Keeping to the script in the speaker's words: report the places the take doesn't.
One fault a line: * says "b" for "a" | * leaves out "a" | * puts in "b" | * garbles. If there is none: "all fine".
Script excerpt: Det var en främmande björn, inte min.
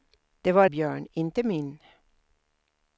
* leaves out "en främmande"